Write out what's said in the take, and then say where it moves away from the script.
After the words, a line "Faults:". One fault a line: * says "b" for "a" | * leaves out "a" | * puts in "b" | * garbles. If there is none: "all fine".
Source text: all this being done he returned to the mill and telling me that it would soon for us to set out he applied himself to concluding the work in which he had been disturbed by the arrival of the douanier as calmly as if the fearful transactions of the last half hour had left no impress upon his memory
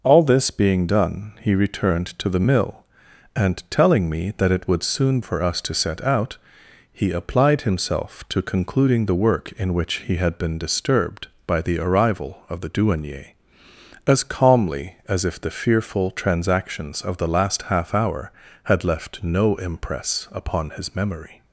all this being done he returned to the mill and telling me that it would soon for us to set out he applied himself to concluding the work in which he had been disturbed by the arrival of the douanier as calmly as if the fearful transactions of the last half hour had left no impress upon his memory
Faults:
all fine